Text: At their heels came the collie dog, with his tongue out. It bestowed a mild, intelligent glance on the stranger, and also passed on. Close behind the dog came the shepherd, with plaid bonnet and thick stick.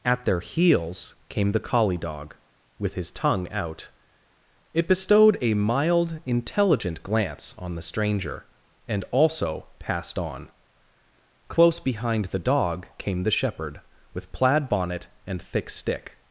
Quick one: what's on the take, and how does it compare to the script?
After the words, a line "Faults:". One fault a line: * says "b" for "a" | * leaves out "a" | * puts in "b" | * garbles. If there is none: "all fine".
At their heels came the collie dog, with his tongue out. It bestowed a mild, intelligent glance on the stranger, and also passed on. Close behind the dog came the shepherd, with plaid bonnet and thick stick.
Faults:
all fine